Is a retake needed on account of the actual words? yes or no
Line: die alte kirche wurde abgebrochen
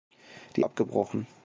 yes